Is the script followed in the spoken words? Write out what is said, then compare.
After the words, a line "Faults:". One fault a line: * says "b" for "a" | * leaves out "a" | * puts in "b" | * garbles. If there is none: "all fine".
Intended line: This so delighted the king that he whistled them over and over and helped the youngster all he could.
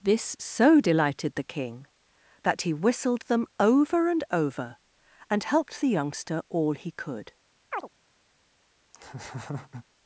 This so delighted the king that he whistled them over and over and helped the youngster all he could.
Faults:
all fine